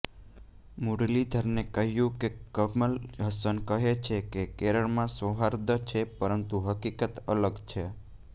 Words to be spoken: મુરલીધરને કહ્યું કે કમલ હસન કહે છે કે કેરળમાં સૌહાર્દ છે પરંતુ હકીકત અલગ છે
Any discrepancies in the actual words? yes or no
no